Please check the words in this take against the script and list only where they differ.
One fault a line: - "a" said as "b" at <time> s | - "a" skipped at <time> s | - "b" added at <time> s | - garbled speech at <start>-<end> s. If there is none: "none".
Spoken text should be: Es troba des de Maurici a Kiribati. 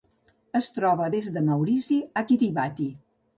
none